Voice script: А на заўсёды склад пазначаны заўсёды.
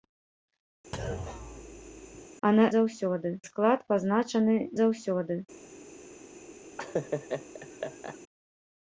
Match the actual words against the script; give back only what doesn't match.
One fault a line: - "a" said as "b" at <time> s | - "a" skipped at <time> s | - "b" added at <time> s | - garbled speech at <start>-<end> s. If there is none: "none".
none